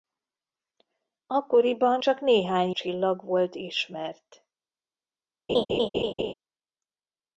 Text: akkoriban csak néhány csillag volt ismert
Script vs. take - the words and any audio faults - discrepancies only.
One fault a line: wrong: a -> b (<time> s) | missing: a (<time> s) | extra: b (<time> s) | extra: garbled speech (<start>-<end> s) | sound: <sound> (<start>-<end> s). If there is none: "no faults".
sound: laugh (5.5-6.3 s)